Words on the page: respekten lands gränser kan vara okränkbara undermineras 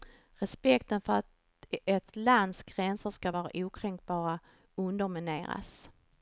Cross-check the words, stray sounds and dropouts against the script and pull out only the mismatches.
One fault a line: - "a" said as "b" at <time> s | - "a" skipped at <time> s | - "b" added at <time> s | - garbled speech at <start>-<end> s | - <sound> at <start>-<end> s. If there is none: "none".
- "för att ett" added at 1.0 s
- "kan" said as "ska" at 3.1 s